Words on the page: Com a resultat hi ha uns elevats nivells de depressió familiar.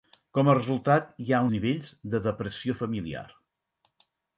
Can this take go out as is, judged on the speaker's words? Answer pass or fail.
fail